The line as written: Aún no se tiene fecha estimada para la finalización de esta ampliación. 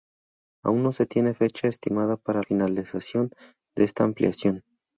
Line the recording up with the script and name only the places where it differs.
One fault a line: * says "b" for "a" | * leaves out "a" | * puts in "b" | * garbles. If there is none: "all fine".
* leaves out "la"